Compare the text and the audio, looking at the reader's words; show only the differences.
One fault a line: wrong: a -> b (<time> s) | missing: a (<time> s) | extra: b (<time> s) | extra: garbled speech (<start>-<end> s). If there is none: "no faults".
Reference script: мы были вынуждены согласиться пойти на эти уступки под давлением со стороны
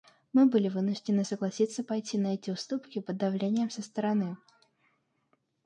no faults